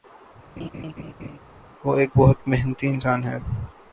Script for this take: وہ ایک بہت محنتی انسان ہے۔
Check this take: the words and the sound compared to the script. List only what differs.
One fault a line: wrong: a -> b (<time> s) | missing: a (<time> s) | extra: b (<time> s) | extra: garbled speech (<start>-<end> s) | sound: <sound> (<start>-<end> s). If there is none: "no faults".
sound: laugh (0.6-1.4 s)